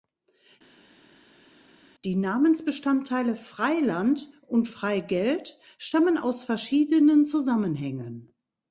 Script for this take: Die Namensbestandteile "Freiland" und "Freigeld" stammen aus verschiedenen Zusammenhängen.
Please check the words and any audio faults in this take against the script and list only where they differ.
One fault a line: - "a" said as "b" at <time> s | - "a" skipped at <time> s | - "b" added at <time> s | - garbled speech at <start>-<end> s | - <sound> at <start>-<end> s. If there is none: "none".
none